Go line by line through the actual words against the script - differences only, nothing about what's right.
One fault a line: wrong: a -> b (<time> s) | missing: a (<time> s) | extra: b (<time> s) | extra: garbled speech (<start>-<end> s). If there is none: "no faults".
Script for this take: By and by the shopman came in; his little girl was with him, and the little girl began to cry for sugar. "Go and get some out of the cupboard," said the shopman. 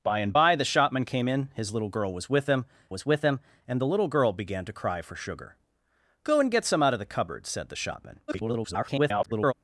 extra: was with him (2.9 s)
extra: garbled speech (8.3-9.5 s)